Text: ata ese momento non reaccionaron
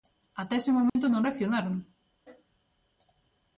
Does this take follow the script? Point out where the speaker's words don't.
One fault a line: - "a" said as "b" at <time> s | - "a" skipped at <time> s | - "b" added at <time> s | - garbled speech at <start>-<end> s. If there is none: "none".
none